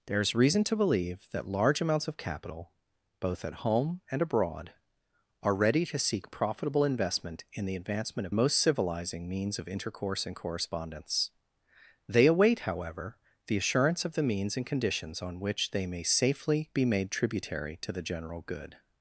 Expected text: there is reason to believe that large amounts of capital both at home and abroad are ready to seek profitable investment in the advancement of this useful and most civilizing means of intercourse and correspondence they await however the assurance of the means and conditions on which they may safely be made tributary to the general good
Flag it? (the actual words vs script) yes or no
yes